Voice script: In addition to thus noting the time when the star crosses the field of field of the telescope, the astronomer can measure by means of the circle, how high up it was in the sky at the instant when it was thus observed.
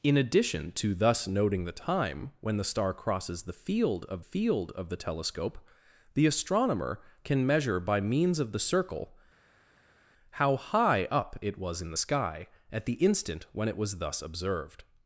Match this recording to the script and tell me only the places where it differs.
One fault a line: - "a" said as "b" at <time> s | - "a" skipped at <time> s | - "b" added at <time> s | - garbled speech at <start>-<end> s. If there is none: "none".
none